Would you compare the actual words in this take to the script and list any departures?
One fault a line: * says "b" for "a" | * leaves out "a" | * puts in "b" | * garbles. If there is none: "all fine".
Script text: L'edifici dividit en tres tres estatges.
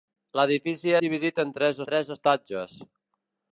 all fine